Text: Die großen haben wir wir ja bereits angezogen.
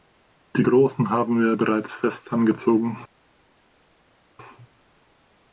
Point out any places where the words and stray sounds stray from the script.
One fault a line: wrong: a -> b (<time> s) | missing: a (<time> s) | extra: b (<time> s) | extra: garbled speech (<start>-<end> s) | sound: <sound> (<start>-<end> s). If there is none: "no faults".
missing: wir (1.5 s)
extra: fest (1.9 s)